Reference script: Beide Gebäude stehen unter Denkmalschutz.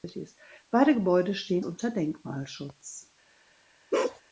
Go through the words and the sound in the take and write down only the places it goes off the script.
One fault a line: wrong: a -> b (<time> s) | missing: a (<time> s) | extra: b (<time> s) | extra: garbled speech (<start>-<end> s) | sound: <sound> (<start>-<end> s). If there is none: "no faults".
sound: bark (3.9-4.2 s)